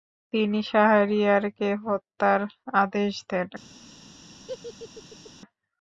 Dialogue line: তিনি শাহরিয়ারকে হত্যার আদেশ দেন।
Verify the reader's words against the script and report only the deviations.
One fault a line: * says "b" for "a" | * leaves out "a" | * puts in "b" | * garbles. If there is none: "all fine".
all fine